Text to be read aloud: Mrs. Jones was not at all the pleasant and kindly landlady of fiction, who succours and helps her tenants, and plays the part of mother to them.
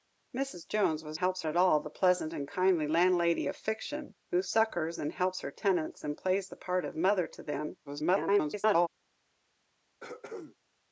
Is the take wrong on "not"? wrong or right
wrong